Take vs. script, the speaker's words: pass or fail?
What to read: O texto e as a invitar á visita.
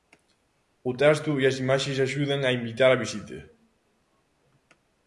fail